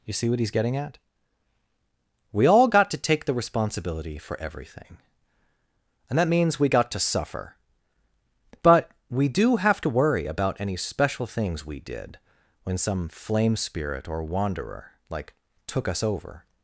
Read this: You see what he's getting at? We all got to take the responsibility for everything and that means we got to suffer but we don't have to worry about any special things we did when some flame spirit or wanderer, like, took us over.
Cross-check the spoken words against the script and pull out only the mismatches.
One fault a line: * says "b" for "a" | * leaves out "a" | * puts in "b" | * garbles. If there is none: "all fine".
* says "do" for "don't"